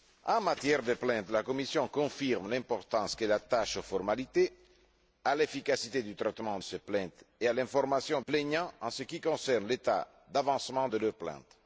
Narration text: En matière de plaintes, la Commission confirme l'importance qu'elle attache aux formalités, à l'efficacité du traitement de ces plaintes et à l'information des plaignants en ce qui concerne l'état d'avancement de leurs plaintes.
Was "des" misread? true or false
true